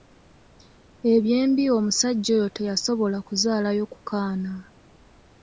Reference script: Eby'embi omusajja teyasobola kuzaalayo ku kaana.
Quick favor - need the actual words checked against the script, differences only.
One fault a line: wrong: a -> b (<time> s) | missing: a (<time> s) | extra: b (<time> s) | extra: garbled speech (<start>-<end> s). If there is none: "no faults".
extra: oyo (2.4 s)